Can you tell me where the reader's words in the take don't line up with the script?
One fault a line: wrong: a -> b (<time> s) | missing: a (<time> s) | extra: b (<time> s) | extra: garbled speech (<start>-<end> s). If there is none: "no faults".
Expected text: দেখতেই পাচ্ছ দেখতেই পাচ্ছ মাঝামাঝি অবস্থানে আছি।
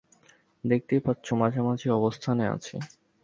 missing: দেখতেই পাচ্ছ (1.3 s)